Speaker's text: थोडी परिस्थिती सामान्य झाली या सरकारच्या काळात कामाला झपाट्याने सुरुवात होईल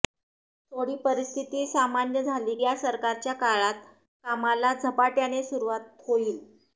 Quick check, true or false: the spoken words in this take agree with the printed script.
true